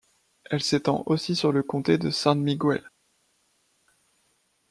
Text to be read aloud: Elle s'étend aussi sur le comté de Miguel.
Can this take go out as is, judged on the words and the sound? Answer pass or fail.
fail